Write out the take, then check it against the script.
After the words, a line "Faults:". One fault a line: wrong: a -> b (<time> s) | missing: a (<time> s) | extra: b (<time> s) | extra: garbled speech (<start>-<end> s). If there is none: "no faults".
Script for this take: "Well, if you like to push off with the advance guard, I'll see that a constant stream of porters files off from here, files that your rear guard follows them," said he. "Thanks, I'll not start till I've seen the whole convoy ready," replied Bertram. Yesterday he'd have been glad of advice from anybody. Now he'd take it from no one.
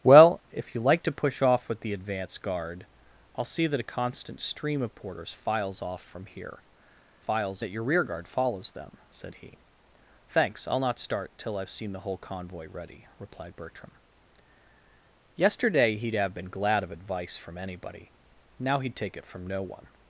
"Well, if you like to push off with the advance guard, I'll see that a constant stream of porters files off from here, files that your rear guard follows them," said he. "Thanks, I'll not start till I've seen the whole convoy ready," replied Bertram. Yesterday he'd have been glad of advice from anybody. Now he'd take it from no one.
Faults:
no faults